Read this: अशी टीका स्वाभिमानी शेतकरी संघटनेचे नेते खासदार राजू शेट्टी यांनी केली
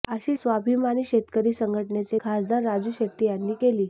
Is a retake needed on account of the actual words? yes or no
yes